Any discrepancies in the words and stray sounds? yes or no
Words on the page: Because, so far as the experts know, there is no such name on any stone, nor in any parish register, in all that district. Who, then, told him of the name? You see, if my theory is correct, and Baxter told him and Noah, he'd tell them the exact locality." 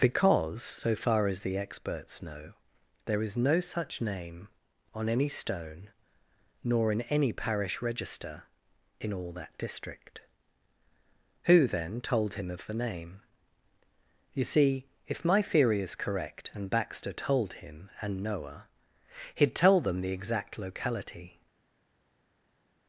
no